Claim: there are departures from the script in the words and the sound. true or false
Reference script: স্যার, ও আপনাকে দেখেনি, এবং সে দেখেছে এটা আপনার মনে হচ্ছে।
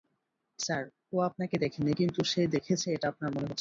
true